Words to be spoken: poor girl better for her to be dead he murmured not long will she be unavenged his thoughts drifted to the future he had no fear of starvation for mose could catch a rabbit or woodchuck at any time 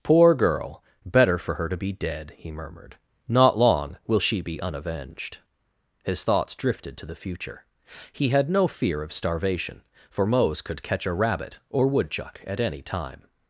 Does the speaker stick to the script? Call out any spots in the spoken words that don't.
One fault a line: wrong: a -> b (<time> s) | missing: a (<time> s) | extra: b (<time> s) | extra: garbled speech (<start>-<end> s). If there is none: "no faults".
no faults